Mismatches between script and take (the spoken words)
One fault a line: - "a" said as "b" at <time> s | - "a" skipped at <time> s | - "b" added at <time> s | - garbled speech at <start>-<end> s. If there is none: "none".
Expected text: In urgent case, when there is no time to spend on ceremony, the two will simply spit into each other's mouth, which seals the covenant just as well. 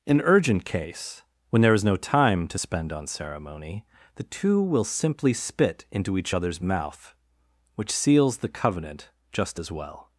none